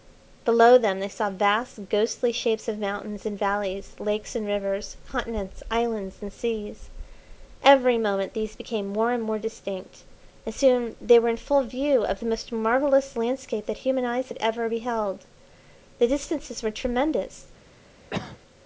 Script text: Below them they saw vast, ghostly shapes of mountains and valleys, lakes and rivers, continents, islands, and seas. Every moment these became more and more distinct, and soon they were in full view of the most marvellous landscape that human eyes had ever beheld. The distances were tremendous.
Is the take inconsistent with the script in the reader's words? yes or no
no